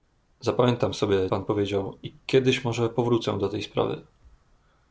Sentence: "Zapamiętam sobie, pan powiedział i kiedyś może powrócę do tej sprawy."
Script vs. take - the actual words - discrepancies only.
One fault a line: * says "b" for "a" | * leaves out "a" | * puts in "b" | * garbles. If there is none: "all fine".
all fine